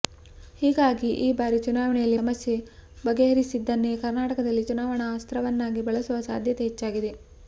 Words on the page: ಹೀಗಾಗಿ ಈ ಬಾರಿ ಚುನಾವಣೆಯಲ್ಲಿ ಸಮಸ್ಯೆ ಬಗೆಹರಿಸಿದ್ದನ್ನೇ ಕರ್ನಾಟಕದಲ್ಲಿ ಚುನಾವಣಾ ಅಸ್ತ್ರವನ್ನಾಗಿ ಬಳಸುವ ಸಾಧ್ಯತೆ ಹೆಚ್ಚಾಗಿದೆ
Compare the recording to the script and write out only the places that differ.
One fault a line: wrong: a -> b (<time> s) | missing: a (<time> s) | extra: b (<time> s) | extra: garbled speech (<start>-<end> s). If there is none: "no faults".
no faults